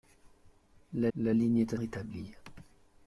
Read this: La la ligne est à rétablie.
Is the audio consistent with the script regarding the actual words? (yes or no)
yes